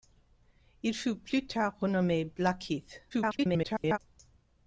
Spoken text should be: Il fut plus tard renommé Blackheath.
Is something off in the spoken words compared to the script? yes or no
yes